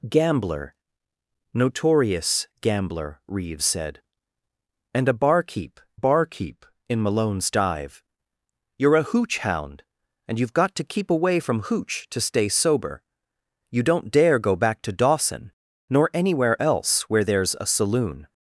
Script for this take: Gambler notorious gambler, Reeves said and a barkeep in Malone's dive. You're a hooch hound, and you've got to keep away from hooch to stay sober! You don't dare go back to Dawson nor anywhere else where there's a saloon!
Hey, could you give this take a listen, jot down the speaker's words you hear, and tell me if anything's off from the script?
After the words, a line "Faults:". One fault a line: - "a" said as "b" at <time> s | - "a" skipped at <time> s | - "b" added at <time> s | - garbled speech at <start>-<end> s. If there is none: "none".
Gambler notorious gambler, Reeves said and a barkeep barkeep in Malone's dive. You're a hooch hound, and you've got to keep away from hooch to stay sober! You don't dare go back to Dawson nor anywhere else where there's a saloon!
Faults:
- "barkeep" added at 5.9 s